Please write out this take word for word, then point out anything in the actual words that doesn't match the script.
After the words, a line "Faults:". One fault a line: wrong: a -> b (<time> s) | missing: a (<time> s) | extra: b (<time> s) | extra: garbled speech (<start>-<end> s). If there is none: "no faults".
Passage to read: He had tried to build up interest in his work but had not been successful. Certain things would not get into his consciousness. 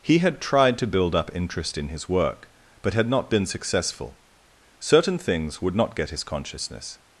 He had tried to build up interest in his work but had not been successful. Certain things would not get his consciousness.
Faults:
missing: into (6.1 s)